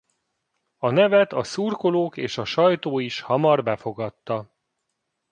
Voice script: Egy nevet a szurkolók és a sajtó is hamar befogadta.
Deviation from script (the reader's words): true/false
true